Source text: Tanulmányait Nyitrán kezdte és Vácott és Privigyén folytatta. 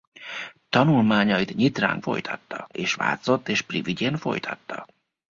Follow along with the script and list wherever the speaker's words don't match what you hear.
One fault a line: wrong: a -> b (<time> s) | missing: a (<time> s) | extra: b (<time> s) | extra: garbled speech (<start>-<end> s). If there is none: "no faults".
wrong: kezdte -> folytatta (2.0 s)